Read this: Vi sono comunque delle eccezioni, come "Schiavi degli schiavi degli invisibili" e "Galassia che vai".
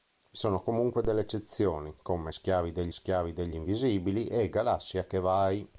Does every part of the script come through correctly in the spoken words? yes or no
yes